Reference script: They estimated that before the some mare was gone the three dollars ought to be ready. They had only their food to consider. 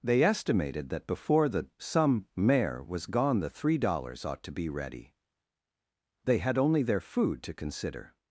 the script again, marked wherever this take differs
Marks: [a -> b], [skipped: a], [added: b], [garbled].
They estimated that before the some mare was gone the three dollars ought to be ready. They had only their food to consider.